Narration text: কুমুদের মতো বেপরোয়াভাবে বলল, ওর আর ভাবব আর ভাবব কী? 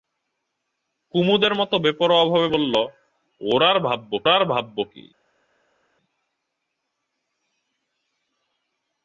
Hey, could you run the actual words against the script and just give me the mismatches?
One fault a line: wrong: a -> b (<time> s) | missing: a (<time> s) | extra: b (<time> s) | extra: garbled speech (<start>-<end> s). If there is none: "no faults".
no faults